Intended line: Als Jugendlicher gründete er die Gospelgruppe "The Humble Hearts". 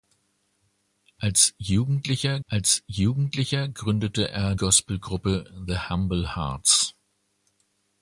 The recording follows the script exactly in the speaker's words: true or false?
false